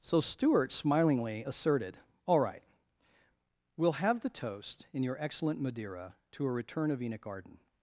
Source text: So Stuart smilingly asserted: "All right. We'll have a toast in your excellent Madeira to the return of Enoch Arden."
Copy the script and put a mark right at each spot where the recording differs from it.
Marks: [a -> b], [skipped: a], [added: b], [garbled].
So Stuart smilingly asserted: "All right. We'll have [a -> the] toast in your excellent Madeira to [the -> a] return of Enoch Arden."